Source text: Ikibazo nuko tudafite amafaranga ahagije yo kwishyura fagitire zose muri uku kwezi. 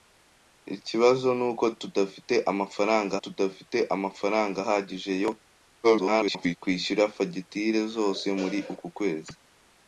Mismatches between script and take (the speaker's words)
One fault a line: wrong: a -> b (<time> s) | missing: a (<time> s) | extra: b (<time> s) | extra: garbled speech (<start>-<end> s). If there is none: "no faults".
extra: tudafite amafaranga (3.2 s)
extra: garbled speech (5.8-6.6 s)